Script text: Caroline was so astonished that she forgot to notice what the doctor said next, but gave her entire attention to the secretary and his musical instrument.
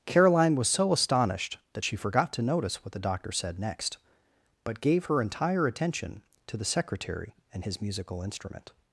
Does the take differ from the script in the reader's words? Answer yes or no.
no